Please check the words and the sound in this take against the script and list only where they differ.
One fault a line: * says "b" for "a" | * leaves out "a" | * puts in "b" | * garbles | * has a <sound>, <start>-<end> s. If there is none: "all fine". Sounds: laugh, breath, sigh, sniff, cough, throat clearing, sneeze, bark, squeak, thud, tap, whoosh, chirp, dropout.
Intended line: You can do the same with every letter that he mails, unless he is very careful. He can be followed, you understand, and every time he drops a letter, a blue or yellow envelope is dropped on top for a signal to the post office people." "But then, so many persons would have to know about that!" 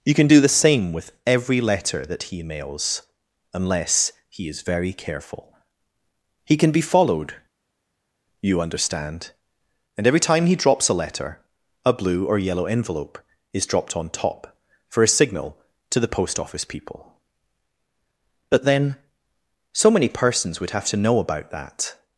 all fine